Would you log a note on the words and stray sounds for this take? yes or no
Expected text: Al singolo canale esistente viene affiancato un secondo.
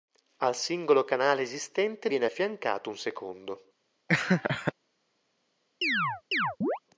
yes